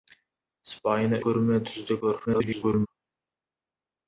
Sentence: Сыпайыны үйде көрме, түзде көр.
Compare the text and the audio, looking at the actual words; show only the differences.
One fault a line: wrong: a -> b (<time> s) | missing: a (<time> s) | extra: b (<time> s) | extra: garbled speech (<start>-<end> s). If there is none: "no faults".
missing: үйде (1.2 s)
extra: garbled speech (2.3-2.9 s)